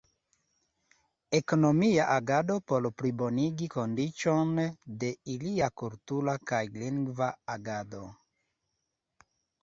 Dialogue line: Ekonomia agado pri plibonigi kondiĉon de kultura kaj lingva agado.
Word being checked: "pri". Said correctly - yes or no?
no